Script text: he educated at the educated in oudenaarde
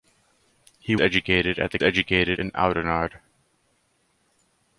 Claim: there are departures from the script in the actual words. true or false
false